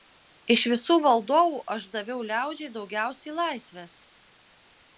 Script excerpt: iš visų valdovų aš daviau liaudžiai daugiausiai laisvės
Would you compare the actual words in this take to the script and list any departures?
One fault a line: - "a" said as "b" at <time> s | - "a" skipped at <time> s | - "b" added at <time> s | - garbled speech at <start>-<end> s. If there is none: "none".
none